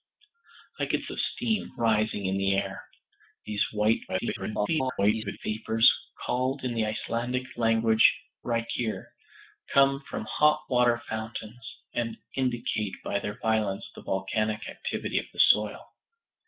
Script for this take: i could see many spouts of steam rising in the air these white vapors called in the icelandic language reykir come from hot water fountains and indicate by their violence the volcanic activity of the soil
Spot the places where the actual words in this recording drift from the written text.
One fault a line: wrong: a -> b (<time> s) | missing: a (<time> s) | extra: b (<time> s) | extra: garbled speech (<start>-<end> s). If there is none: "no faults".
missing: see many spouts (1.0 s)
extra: garbled speech (4.1-5.4 s)